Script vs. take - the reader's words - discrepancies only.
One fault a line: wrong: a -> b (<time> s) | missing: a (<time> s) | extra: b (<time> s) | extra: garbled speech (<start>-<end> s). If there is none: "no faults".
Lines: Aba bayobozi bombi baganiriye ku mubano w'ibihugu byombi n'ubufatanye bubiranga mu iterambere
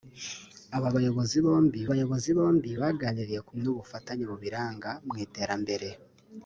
extra: bayobozi bombi (1.9 s)
missing: mubano w'ibihugu byombi (3.5 s)